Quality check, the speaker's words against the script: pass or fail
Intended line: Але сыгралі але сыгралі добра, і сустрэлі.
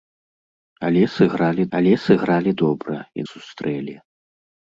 pass